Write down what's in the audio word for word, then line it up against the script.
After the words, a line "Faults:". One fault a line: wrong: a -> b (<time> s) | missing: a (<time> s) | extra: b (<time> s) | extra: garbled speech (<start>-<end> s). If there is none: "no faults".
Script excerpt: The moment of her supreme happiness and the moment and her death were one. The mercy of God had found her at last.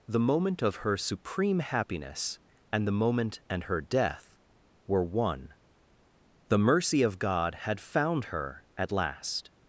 The moment of her supreme happiness and the moment and her death were one. The mercy of God had found her at last.
Faults:
no faults